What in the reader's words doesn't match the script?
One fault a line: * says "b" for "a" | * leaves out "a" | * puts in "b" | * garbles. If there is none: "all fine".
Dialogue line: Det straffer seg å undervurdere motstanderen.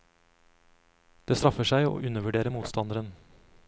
all fine